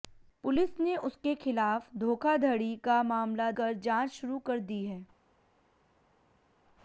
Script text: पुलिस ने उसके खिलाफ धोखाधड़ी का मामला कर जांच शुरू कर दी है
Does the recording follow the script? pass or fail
pass